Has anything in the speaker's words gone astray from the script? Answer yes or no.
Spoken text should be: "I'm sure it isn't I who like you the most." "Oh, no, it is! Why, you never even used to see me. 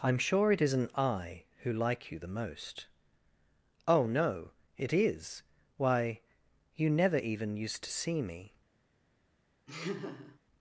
no